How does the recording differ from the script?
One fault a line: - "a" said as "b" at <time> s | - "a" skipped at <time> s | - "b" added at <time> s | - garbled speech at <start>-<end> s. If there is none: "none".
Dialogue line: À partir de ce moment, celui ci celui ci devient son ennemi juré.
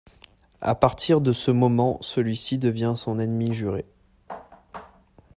- "celui ci" skipped at 2.6 s